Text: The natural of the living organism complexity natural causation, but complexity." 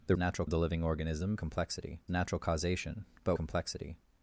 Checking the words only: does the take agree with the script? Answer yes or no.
yes